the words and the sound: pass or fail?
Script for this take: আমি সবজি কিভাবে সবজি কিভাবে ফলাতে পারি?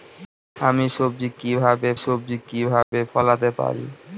fail